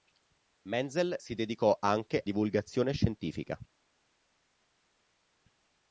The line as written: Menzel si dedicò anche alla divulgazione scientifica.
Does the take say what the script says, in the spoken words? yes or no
no